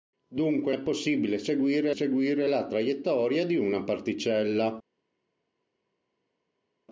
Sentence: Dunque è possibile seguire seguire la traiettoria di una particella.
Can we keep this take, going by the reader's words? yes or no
yes